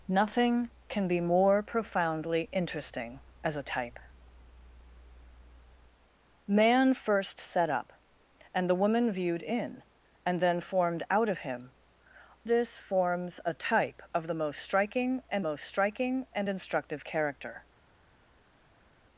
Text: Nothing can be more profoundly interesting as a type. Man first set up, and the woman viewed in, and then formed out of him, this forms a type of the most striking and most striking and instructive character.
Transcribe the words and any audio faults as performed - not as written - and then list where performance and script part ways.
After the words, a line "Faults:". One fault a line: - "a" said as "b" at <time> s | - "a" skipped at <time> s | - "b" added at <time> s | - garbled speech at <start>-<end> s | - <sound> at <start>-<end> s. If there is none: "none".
Nothing can be more profoundly interesting as a type. Man first set up, and the woman viewed in, and then formed out of him, this forms a type of the most striking and most striking and instructive character.
Faults:
none